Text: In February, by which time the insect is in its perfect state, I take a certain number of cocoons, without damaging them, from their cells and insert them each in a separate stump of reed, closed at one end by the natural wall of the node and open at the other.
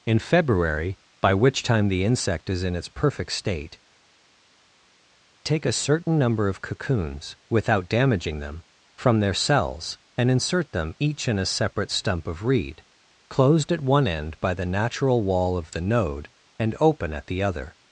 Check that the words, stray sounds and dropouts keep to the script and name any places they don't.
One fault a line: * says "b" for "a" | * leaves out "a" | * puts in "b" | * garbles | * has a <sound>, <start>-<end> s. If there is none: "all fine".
* leaves out "I"